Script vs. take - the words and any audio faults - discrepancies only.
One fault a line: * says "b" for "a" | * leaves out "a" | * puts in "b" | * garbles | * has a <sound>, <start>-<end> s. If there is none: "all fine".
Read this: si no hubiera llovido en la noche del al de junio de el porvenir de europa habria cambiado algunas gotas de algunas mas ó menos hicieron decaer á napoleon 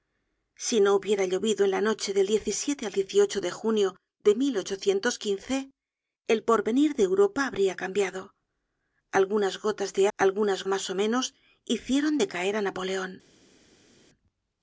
all fine